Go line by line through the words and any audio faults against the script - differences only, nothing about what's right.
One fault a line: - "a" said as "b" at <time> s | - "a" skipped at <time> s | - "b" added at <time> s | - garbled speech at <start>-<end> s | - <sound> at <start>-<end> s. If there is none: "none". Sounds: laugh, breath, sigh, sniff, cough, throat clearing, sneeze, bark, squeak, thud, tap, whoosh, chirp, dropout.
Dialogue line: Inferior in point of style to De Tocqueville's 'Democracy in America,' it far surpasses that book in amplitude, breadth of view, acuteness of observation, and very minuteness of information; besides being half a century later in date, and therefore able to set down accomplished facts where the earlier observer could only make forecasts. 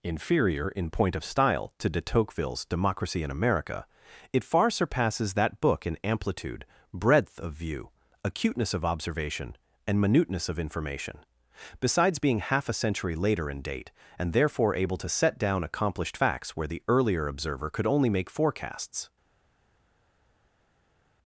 - "very" skipped at 10.0 s